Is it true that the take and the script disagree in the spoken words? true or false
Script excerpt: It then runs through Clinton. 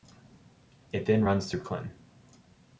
false